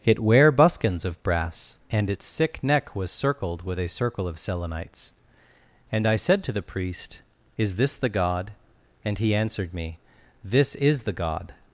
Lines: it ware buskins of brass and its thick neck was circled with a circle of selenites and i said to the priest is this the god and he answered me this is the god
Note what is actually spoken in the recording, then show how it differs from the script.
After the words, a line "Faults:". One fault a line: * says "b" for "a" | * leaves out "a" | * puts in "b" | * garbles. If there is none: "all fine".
it ware buskins of brass and its sick neck was circled with a circle of selenites and i said to the priest is this the god and he answered me this is the god
Faults:
* says "sick" for "thick"